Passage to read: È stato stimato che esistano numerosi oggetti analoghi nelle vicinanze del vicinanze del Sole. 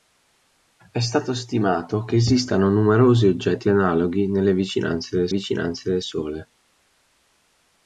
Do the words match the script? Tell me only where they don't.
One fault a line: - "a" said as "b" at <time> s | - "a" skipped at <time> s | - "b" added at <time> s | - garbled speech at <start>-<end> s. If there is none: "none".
none